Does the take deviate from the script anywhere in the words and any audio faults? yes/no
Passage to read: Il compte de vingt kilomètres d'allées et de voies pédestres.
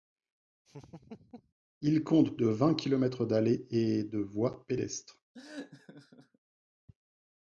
yes